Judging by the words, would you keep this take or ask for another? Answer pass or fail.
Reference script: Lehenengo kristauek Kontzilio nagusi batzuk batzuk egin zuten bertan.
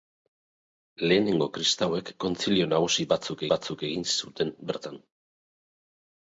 pass